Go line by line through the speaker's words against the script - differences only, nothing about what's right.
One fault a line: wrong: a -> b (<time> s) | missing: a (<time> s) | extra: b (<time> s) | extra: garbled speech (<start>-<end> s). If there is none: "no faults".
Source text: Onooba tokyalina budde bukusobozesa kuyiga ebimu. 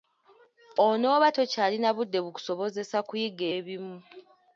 no faults